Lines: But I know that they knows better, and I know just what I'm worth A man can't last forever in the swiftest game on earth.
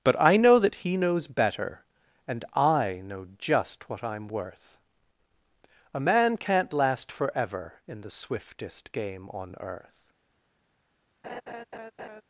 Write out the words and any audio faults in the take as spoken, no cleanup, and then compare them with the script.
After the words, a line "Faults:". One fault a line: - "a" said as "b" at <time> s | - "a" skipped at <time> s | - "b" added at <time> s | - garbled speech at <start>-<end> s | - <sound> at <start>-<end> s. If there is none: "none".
But I know that he knows better, and I know just what I'm worth A man can't last forever in the swiftest game on earth.
Faults:
- "they" said as "he" at 0.8 s
- laugh at 11.2-12.2 s